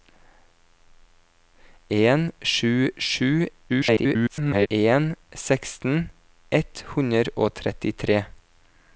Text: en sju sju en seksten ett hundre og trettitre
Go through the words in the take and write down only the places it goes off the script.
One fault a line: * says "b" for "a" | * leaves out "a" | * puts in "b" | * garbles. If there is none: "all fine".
* garbles